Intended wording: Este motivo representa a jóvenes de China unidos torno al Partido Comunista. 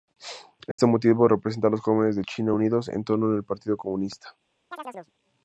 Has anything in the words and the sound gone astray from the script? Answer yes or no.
yes